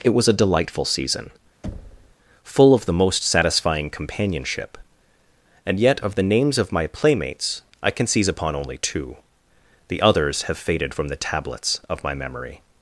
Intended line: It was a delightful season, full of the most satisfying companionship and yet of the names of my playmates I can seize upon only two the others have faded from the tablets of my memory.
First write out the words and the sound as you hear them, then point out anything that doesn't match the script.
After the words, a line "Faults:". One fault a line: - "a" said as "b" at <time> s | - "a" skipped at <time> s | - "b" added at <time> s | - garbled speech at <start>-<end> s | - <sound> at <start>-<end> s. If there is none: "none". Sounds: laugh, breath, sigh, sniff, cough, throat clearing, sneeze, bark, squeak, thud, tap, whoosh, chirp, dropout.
It was a delightful season, full of the most satisfying companionship and yet of the names of my playmates I can seize upon only two the others have faded from the tablets of my memory.
Faults:
- thud at 1.6-2.2 s